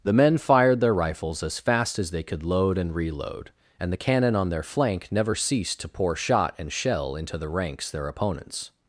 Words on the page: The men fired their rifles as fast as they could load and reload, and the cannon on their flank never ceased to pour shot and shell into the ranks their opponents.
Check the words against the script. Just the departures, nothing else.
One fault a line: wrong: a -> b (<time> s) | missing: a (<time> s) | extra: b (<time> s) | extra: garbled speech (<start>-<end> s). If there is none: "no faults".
no faults